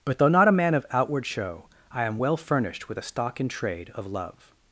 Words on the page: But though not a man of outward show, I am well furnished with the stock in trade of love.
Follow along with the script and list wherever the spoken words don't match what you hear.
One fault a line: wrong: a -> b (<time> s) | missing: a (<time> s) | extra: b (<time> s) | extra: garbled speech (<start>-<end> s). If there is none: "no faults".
wrong: the -> a (3.0 s)